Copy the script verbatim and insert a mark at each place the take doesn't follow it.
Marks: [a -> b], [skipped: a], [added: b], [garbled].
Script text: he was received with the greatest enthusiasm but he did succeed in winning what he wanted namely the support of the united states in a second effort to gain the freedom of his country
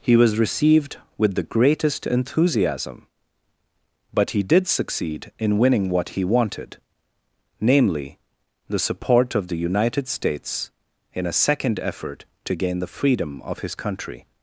he was received with the greatest enthusiasm but he did succeed in winning what he wanted namely the support of the united states in a second effort to gain the freedom of his country